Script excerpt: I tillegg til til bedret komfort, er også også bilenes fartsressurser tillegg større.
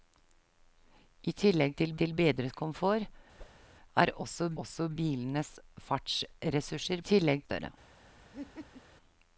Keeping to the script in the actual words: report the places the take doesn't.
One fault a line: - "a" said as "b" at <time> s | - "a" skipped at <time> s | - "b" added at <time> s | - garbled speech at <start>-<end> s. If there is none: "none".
none